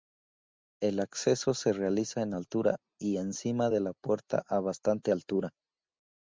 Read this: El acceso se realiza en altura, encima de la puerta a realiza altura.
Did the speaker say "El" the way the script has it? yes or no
yes